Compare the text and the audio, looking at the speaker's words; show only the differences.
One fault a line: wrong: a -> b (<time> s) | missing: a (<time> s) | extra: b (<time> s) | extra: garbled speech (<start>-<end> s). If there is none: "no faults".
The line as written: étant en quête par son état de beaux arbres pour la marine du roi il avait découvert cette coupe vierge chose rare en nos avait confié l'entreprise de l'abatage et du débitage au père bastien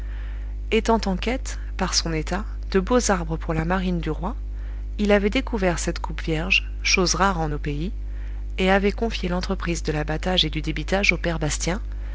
extra: pays et (7.6 s)